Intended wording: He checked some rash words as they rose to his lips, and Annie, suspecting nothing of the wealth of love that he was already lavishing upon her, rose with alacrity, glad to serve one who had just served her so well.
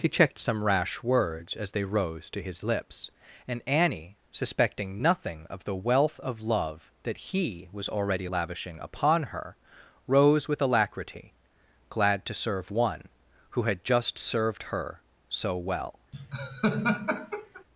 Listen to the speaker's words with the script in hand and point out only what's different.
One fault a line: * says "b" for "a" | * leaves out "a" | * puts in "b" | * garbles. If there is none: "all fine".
all fine